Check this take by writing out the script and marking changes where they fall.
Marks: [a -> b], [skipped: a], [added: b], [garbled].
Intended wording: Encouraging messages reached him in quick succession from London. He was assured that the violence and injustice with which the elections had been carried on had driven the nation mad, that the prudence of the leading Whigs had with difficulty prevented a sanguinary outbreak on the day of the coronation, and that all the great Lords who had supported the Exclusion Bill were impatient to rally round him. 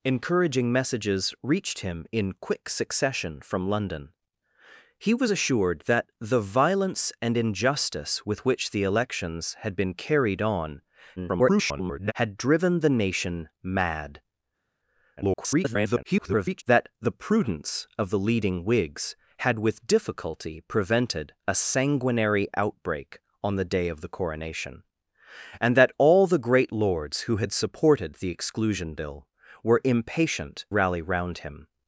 Encouraging messages reached him in quick succession from London. He was assured that the violence and injustice with which the elections had been carried on [garbled] had driven the nation mad, [garbled] that the prudence of the leading Whigs had with difficulty prevented a sanguinary outbreak on the day of the coronation, and that all the great Lords who had supported the Exclusion Bill were impatient [skipped: to] rally round him.